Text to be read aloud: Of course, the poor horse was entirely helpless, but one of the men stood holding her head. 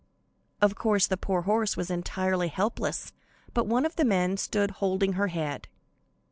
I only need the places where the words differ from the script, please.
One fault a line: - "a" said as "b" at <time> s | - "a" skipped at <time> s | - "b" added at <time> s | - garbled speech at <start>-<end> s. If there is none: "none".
none